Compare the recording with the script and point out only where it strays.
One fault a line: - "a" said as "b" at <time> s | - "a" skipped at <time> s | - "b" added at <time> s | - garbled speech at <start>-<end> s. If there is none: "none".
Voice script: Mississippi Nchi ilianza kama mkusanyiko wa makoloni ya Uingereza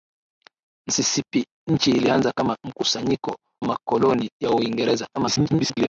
- "wa" skipped at 3.4 s
- garbled speech at 5.1-5.9 s